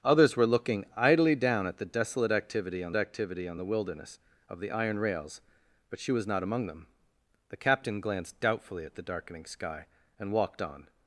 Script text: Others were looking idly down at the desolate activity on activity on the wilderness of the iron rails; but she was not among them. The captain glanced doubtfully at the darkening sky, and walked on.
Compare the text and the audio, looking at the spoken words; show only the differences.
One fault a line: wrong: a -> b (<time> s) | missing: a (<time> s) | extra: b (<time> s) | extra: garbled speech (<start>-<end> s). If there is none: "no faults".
no faults